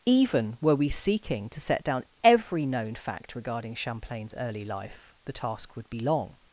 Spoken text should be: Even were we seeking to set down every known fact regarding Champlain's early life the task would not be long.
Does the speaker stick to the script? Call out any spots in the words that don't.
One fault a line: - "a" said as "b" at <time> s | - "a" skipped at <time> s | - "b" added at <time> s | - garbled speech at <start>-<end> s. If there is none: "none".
- "not" skipped at 5.9 s